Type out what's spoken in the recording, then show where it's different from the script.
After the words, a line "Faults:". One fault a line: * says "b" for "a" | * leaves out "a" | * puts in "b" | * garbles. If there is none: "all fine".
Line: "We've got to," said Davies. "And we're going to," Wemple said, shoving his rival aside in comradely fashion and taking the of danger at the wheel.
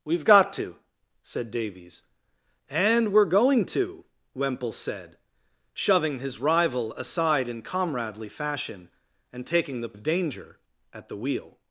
"We've got to," said Davies. "And we're going to," Wemple said, shoving his rival aside in comradely fashion and taking the of danger at the wheel.
Faults:
all fine